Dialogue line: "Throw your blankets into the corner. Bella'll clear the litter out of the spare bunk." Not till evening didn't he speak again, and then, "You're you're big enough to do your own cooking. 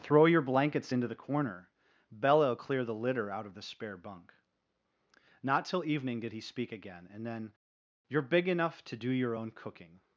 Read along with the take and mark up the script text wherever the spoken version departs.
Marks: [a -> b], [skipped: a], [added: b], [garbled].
"Throw your blankets into the corner. Bella'll clear the litter out of the spare bunk." Not till evening [didn't -> did] he speak again, and then, "You're [skipped: you're] big enough to do your own cooking.